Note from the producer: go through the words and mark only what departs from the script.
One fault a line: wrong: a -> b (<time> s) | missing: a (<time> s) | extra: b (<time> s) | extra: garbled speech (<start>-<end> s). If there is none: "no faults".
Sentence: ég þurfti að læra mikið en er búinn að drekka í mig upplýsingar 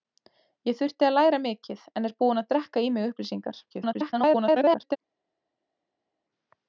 extra: garbled speech (3.7-5.0 s)